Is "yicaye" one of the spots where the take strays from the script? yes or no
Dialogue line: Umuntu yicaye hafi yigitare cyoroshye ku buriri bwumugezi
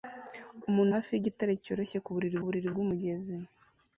yes